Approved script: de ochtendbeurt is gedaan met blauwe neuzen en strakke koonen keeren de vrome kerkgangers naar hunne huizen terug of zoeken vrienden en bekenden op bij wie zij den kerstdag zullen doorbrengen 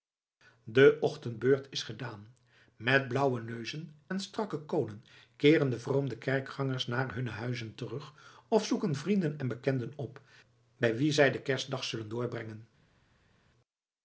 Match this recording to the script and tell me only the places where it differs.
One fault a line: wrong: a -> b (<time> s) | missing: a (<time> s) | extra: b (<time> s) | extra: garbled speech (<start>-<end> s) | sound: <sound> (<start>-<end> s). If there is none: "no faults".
no faults